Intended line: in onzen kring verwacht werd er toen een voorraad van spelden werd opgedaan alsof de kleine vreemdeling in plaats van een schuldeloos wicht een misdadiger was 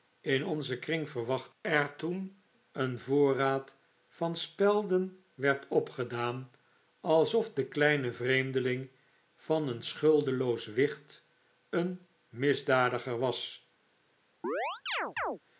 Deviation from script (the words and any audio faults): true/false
true